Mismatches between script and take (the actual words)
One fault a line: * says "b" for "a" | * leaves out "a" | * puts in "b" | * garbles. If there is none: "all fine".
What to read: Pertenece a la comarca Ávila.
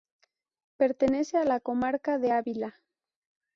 * puts in "de"